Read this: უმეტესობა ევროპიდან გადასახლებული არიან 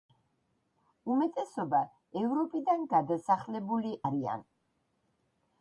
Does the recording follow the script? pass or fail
pass